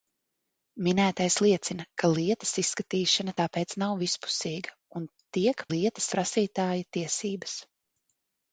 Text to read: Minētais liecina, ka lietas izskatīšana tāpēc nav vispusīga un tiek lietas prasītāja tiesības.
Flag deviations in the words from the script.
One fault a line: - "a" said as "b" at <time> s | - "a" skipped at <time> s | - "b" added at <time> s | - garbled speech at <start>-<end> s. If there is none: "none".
none